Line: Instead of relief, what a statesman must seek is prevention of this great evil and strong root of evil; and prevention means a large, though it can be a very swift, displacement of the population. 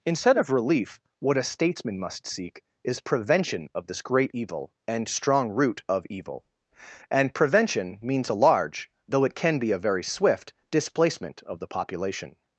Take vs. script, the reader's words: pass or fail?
pass